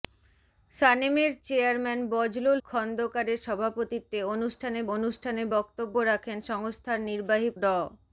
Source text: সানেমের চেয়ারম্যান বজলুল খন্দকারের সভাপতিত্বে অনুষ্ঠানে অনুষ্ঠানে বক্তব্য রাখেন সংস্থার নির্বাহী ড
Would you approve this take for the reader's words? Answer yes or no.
yes